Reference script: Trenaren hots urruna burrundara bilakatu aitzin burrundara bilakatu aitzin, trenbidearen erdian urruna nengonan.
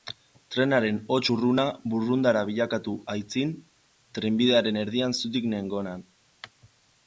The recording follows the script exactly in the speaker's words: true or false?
false